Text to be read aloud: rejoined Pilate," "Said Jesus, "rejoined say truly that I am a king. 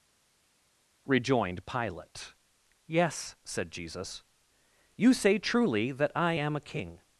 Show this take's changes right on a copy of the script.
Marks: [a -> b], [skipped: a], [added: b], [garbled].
rejoined Pilate," [added: Yes] "Said Jesus, ["rejoined -> you] say truly that I am a king.